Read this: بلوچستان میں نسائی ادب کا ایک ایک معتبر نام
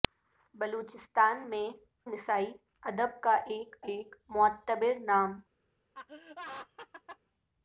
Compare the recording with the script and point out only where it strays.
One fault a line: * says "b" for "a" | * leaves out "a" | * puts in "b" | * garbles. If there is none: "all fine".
all fine